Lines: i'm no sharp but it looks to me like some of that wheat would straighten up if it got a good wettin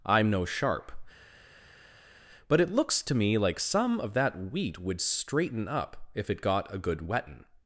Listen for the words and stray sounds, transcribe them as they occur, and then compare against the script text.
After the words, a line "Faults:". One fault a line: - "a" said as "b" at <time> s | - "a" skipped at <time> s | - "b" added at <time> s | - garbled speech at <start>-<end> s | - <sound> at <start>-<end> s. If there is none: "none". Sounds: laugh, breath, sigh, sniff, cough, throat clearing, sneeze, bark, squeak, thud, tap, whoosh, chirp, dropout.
i'm no sharp but it looks to me like some of that wheat would straighten up if it got a good wettin
Faults:
none